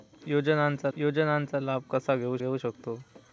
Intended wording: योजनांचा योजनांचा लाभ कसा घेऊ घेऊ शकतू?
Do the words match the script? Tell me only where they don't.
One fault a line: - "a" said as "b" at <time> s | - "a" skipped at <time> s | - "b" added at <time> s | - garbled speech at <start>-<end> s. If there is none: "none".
none